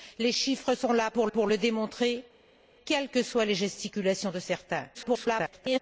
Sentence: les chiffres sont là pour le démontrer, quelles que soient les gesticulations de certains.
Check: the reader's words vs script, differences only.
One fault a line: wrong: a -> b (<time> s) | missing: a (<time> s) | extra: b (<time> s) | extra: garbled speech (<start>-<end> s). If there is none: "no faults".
extra: pour (1.3 s)
extra: garbled speech (4.9-5.8 s)